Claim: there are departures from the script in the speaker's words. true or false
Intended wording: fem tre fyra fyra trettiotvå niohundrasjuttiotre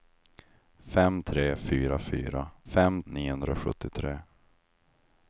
true